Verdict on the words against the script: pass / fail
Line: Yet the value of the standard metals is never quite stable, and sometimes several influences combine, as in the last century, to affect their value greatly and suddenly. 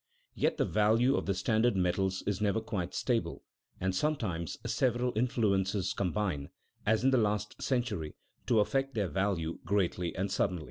pass